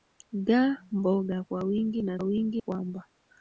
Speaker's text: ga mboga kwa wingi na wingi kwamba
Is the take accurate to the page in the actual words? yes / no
yes